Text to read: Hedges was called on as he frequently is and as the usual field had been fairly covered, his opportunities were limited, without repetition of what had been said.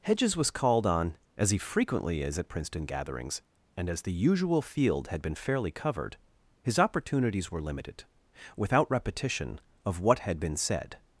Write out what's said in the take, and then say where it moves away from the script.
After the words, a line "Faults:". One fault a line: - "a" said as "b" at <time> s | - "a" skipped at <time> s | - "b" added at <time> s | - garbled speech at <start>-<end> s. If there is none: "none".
Hedges was called on as he frequently is at Princeton gatherings and as the usual field had been fairly covered, his opportunities were limited, without repetition of what had been said.
Faults:
- "at Princeton gatherings" added at 2.4 s